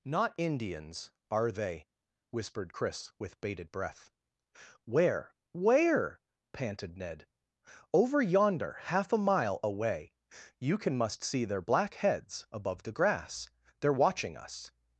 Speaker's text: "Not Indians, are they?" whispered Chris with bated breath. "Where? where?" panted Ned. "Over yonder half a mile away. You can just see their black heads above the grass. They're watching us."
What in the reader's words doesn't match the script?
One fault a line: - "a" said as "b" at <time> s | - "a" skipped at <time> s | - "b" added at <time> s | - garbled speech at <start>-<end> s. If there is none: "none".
- "just" said as "must" at 11.0 s